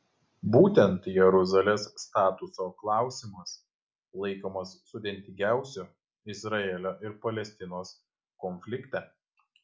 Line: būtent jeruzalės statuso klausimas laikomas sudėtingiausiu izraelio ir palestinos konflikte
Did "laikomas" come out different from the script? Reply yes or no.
no